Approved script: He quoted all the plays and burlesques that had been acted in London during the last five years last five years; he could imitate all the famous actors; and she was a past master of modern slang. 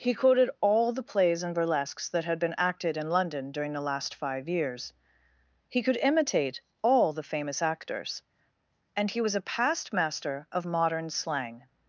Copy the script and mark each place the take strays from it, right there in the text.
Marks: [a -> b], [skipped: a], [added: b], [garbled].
He quoted all the plays and burlesques that had been acted in London during the last five years [skipped: last five years;] he could imitate all the famous actors; and [she -> he] was a past master of modern slang.